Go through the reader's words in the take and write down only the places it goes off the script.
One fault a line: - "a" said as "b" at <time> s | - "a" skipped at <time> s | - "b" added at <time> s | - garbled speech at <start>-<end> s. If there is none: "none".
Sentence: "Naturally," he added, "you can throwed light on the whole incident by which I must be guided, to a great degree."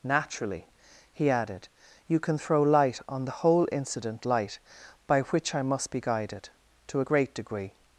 - "throwed" said as "throw" at 2.4 s
- "light" added at 4.2 s